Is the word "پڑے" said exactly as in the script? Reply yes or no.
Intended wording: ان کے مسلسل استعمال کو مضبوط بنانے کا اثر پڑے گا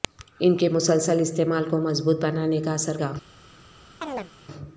no